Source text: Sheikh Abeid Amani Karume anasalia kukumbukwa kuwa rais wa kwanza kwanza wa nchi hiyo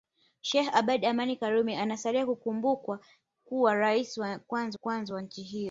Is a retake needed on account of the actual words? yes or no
no